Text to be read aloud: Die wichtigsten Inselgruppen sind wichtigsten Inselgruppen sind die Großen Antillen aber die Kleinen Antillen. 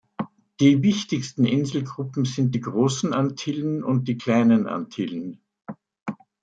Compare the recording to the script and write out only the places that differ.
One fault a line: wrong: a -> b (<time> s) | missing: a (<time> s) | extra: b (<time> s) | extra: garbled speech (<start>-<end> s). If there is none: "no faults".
missing: wichtigsten Inselgruppen sind (2.5 s)
wrong: aber -> und (3.8 s)